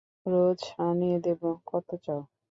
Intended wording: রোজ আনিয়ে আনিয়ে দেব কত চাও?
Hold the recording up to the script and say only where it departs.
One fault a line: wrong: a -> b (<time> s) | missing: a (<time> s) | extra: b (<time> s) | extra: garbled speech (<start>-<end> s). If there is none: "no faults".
missing: আনিয়ে (1.2 s)